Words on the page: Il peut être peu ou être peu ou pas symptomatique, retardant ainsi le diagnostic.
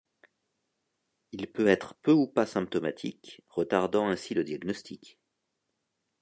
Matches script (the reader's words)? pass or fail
fail